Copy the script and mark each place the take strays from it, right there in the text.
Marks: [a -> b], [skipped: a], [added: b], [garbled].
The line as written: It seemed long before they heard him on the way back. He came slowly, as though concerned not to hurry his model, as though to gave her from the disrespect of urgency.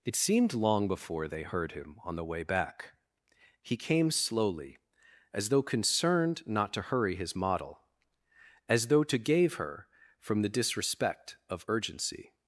It seemed long before they heard him on the way back. He came slowly, as though concerned not to hurry his model, as though to gave her from the disrespect of urgency.